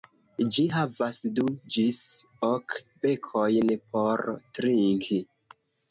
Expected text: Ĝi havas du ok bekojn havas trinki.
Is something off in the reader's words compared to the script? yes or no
yes